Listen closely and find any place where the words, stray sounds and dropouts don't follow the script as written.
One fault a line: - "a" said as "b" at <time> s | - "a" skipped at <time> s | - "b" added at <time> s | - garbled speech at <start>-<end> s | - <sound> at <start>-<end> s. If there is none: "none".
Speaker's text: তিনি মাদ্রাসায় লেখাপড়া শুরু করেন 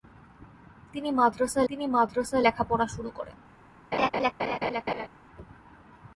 - "তিনি মাদ্রাসায়" added at 1.7 s
- laugh at 3.9-5.1 s